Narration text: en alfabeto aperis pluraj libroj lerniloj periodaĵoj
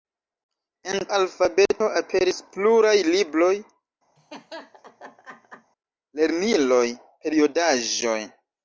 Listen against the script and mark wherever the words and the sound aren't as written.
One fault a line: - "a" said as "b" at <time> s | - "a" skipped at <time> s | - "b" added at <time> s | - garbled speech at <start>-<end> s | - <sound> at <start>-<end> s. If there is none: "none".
- laugh at 4.2-5.7 s